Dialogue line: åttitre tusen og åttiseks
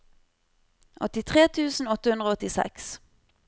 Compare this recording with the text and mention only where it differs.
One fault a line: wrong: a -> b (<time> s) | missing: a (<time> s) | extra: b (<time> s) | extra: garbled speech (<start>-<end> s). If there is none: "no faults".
extra: åtte hundre (2.0 s)